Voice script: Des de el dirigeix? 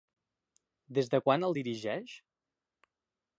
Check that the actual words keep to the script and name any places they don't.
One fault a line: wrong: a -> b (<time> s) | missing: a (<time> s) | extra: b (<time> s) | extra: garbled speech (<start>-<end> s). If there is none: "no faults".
extra: quan (1.3 s)